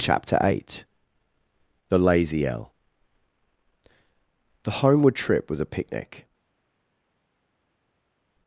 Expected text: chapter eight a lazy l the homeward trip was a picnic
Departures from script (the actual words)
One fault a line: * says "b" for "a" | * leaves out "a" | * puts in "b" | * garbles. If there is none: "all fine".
* says "the" for "a"